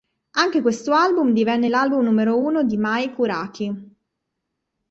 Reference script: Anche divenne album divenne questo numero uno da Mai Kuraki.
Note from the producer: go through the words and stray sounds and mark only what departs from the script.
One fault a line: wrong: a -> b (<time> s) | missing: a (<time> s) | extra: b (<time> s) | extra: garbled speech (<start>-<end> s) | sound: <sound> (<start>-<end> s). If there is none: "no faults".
wrong: divenne -> questo (0.6 s)
wrong: questo -> l'album (1.7 s)
wrong: da -> di (2.6 s)